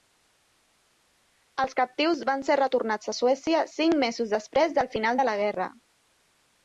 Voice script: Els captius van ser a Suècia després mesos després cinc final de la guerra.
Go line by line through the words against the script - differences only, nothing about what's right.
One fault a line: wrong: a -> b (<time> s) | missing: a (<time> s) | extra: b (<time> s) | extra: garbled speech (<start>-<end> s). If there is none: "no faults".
extra: retornats (2.6 s)
wrong: després -> cinc (3.7 s)
wrong: cinc -> del (4.8 s)